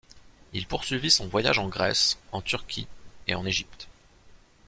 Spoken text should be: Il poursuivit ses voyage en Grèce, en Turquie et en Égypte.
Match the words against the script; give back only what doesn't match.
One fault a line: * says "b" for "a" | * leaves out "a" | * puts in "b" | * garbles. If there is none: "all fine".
* says "son" for "ses"